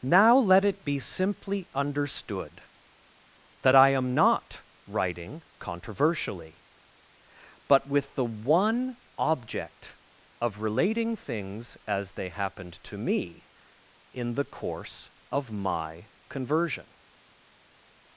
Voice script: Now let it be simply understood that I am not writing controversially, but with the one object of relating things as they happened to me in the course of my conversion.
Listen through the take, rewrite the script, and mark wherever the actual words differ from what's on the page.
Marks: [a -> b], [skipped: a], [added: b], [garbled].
Now let it be simply understood that I am not writing controversially, but with the one object of relating things as they happened to me in the course of my conversion.